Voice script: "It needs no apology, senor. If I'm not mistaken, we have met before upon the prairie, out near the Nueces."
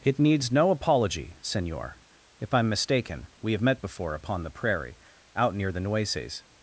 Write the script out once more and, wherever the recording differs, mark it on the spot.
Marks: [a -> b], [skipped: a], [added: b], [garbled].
"It needs no apology, senor. If I'm [skipped: not] mistaken, we have met before upon the prairie, out near the Nueces."